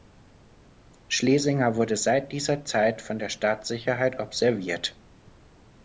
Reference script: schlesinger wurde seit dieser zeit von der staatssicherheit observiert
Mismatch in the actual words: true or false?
false